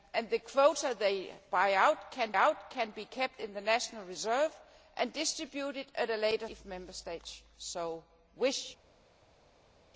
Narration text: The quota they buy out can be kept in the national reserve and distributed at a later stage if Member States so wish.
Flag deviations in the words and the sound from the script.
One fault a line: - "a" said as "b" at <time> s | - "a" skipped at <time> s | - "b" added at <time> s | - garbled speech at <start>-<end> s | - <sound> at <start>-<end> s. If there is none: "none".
- "out can" added at 2.3 s
- "stage" skipped at 6.5 s